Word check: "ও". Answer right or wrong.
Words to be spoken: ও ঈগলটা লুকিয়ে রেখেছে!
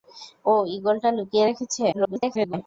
right